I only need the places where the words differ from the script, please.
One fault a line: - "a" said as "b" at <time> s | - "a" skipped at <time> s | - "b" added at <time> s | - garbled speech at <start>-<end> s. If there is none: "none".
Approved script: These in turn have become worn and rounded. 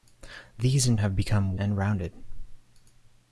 - "turn" skipped at 1.0 s
- "worn" skipped at 1.6 s